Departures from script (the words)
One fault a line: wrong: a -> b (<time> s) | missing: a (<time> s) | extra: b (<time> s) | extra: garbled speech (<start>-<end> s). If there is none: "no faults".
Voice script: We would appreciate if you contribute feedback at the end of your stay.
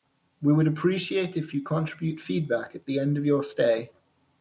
no faults